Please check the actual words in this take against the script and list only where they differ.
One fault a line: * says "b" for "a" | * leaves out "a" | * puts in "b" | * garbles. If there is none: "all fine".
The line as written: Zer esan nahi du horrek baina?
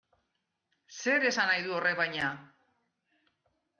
all fine